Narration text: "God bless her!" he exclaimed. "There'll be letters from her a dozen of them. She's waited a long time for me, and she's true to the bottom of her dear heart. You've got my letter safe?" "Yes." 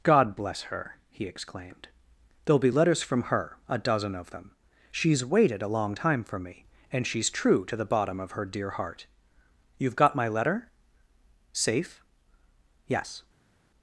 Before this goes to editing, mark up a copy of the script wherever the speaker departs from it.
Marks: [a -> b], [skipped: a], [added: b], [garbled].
"God bless her!" he exclaimed. "There'll be letters from her a dozen of them. She's waited a long time for me, and she's true to the bottom of her dear heart. You've got my letter safe?" "Yes."